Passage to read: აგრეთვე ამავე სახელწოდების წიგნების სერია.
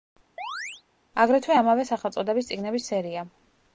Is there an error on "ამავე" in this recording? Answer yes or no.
no